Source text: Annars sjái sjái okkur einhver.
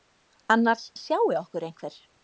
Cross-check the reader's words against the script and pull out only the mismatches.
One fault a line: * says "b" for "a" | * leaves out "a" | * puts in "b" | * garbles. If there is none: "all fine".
* leaves out "sjái"